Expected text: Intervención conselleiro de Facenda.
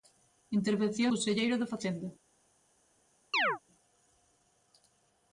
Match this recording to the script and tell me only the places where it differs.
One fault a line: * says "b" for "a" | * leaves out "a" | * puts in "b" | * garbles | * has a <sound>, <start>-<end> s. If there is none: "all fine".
* has a chirp, 3.3-3.6 s